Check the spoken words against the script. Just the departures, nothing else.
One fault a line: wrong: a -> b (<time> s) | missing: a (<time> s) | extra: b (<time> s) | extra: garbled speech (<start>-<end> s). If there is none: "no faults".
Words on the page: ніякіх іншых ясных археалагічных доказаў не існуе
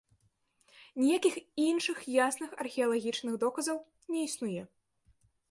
no faults